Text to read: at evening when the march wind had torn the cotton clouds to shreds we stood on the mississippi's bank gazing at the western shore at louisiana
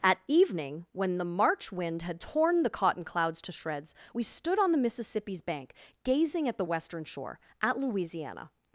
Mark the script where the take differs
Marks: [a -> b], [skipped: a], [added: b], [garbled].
at evening when the march wind had torn the cotton clouds to shreds we stood on the mississippi's bank gazing at the western shore at louisiana